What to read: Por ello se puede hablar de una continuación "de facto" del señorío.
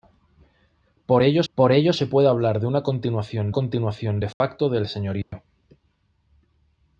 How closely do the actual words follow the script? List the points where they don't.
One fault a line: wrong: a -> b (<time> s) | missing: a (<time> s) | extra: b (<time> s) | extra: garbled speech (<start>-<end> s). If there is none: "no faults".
extra: por ello (1.5 s)
extra: continuación (3.5 s)